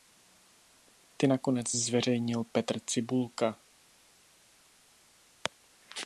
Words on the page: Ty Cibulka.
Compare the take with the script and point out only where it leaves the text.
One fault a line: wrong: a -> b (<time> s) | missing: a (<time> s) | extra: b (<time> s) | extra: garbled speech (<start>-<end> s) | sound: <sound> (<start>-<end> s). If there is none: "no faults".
extra: nakonec zveřejnil Petr (1.3 s)